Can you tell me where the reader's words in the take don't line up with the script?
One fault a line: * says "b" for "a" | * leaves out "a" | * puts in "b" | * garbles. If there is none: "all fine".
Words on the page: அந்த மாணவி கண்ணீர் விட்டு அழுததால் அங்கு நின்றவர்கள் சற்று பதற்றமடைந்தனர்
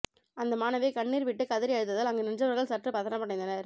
* puts in "கதறி"